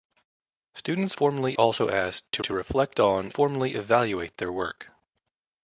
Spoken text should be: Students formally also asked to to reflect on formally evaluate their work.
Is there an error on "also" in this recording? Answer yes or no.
no